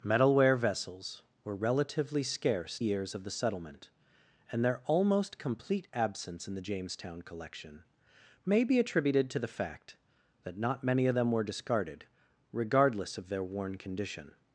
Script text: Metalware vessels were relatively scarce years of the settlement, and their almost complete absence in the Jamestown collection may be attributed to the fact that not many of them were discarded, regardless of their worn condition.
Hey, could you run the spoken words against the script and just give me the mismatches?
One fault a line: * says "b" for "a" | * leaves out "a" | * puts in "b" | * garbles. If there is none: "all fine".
all fine